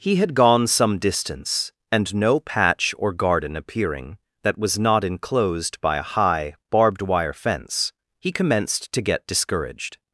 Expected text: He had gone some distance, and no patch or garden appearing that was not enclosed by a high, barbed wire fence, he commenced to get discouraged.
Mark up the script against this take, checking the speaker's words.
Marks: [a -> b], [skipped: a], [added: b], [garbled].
He had gone some distance, and no patch or garden appearing that was not enclosed by a high, barbed wire fence, he commenced to get discouraged.